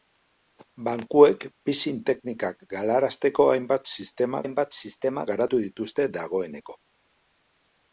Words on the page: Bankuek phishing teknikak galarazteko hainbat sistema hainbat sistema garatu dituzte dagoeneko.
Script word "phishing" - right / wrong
right